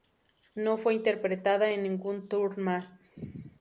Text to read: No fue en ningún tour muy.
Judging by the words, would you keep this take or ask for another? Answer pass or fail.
fail